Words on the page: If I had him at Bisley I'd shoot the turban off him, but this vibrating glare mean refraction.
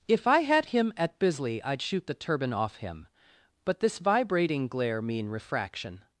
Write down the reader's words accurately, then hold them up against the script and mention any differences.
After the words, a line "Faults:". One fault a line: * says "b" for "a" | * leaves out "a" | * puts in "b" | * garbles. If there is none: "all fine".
If I had him at Bisley I'd shoot the turban off him, but this vibrating glare mean refraction.
Faults:
all fine